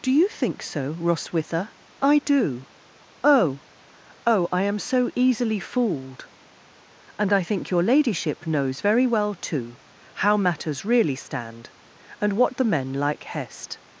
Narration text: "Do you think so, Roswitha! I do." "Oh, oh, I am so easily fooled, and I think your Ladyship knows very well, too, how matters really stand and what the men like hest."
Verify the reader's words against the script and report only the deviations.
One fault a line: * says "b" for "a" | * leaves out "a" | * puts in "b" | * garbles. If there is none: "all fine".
all fine